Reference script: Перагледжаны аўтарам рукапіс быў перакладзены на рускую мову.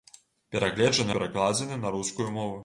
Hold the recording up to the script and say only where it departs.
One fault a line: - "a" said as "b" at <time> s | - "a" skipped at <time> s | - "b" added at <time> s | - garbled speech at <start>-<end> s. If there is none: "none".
- "аўтарам рукапіс быў" skipped at 1.1 s